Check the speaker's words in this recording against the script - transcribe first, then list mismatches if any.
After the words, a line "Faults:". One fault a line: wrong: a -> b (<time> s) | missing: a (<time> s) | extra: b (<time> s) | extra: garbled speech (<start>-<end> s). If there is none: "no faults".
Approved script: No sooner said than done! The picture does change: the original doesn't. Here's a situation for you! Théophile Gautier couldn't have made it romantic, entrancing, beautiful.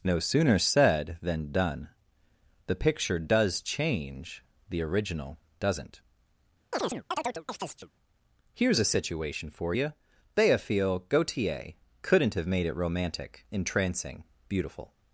No sooner said than done! The picture does change: the original doesn't. Here's a situation for you! Théophile Gautier couldn't have made it romantic, entrancing, beautiful.
Faults:
no faults